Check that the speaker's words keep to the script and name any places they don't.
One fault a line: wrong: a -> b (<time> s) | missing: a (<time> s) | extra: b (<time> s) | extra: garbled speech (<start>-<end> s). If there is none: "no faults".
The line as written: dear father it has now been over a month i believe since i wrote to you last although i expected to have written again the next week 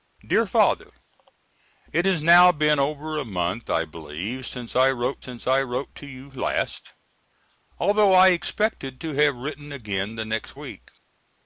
extra: since i wrote (5.2 s)